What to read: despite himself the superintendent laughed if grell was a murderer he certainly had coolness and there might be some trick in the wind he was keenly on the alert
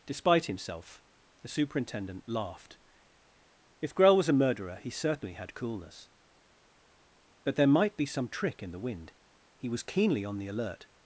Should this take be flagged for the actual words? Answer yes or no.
yes